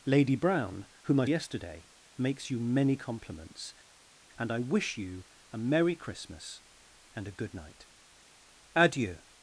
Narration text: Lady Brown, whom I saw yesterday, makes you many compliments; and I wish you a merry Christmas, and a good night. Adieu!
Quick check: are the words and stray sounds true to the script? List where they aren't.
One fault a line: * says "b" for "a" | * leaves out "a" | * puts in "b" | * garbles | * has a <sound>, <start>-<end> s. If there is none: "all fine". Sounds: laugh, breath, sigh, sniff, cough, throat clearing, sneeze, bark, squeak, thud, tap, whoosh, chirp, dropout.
* leaves out "saw"